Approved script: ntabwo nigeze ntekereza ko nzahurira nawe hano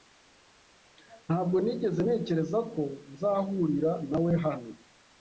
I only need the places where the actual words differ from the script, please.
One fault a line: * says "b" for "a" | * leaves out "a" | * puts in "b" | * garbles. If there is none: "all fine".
all fine